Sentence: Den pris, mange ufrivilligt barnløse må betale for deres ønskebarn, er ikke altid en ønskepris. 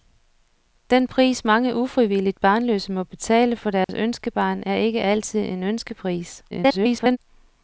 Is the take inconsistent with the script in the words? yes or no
yes